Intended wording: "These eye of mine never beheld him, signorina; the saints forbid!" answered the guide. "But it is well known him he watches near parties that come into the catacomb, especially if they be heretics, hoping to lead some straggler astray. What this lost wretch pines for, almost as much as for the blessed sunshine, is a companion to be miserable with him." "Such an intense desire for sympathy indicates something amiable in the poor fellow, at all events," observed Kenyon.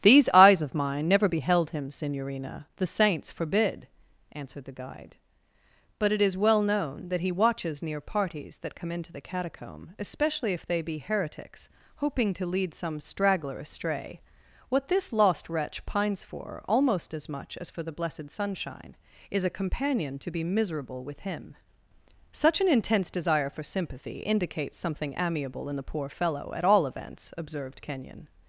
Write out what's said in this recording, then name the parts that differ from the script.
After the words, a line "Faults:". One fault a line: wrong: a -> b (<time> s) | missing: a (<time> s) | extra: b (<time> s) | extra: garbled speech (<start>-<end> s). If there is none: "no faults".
"These eyes of mine never beheld him, signorina; the saints forbid!" answered the guide. "But it is well known that he watches near parties that come into the catacomb, especially if they be heretics, hoping to lead some straggler astray. What this lost wretch pines for, almost as much as for the blessed sunshine, is a companion to be miserable with him." "Such an intense desire for sympathy indicates something amiable in the poor fellow, at all events," observed Kenyon.
Faults:
wrong: eye -> eyes (0.3 s)
wrong: him -> that (7.1 s)